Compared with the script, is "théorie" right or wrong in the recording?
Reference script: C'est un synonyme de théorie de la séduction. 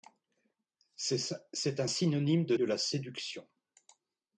wrong